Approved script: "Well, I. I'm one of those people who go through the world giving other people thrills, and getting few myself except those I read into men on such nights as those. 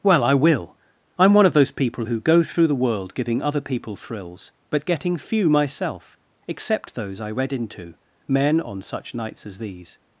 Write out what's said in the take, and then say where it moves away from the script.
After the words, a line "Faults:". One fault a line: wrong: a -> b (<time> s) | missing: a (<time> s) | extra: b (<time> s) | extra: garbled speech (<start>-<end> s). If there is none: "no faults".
"Well, I will. I'm one of those people who go through the world giving other people thrills, but getting few myself except those I read into men on such nights as these.
Faults:
extra: will (0.3 s)
wrong: and -> but (4.7 s)
wrong: those -> these (9.6 s)